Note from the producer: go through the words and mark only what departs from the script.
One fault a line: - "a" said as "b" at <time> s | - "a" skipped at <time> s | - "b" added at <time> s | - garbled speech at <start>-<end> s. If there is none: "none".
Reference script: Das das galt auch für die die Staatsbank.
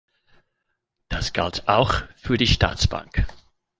- "das" skipped at 1.3 s
- "die" skipped at 2.5 s